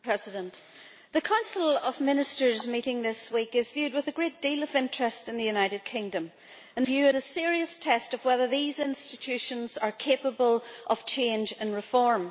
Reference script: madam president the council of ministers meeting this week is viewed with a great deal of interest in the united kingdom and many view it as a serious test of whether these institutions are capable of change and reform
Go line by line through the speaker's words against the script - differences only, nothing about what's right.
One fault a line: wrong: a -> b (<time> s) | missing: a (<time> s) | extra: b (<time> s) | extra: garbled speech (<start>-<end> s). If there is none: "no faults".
missing: many (6.9 s)
missing: as (7.2 s)